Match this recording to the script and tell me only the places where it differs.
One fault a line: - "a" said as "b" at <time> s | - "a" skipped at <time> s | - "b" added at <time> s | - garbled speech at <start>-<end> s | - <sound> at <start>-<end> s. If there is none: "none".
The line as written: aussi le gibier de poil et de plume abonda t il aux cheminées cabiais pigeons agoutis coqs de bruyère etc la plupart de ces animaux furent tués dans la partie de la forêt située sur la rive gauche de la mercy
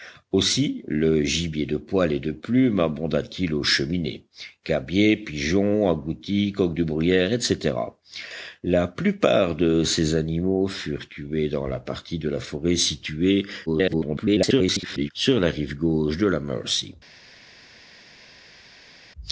- garbled speech at 13.7-15.1 s